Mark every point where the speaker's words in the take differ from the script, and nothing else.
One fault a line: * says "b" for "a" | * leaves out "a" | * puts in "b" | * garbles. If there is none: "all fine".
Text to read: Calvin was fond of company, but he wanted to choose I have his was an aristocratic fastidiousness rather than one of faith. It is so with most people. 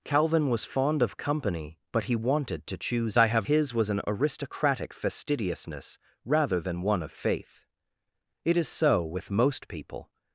all fine